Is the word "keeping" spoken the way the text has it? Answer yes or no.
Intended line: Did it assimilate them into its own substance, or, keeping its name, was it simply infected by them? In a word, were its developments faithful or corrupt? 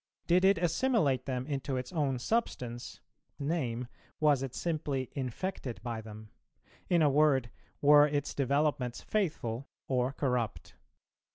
no